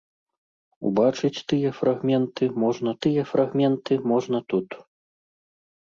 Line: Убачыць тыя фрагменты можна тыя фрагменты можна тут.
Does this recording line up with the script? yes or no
yes